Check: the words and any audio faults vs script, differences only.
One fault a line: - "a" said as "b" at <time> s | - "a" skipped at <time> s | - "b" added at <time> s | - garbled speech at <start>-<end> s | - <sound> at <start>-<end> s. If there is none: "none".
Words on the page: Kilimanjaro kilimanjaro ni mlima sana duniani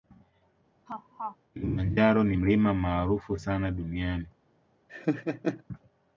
- laugh at 0.9-1.4 s
- "kilimanjaro" skipped at 2.2 s
- "maarufu" added at 2.7 s
- laugh at 4.9-5.6 s